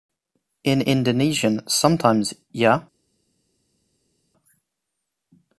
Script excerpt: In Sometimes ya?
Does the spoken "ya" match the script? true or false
true